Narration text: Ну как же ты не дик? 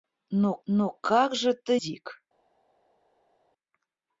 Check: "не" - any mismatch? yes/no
yes